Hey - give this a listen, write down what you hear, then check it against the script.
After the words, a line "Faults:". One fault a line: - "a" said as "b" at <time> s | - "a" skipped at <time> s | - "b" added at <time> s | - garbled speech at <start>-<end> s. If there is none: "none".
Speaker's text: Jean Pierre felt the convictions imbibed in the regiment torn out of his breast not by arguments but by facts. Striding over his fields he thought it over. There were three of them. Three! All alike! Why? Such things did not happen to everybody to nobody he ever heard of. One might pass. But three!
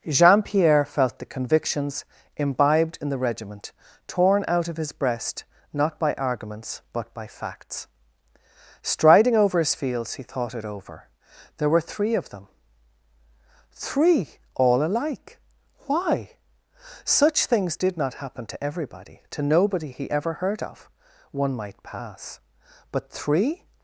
Jean Pierre felt the convictions imbibed in the regiment torn out of his breast not by arguments but by facts. Striding over his fields he thought it over. There were three of them. Three! All alike! Why? Such things did not happen to everybody to nobody he ever heard of. One might pass. But three!
Faults:
none